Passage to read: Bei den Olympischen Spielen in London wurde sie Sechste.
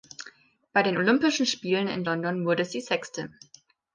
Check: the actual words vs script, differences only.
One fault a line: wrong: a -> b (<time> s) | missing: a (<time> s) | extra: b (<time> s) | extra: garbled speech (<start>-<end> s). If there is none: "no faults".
no faults